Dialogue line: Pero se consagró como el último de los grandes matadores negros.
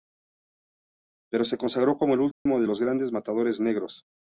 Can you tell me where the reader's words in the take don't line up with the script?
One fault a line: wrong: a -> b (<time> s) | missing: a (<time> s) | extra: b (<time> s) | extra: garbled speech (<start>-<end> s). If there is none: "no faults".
no faults